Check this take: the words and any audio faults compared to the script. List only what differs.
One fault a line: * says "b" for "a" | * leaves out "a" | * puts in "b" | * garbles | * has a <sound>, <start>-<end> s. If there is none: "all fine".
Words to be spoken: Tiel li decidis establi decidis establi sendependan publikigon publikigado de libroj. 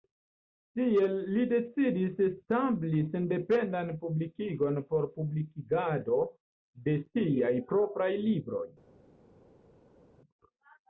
* leaves out "decidis establi"
* puts in "por"
* puts in "siaj propraj"